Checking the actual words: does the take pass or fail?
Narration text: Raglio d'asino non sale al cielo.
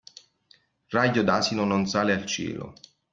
pass